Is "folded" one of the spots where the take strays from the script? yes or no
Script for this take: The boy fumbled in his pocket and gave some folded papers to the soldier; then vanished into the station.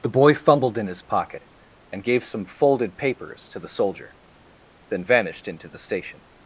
no